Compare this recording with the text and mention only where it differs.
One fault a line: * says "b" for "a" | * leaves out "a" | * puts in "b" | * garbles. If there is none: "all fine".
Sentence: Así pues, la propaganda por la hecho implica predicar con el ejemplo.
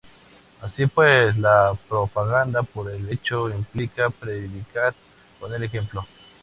* says "el" for "la"